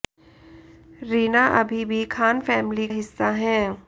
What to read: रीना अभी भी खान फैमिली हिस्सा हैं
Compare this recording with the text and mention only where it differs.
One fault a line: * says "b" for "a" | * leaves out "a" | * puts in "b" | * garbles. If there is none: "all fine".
all fine